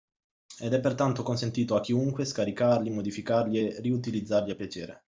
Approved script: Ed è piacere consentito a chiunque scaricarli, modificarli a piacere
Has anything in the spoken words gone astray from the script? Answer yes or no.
yes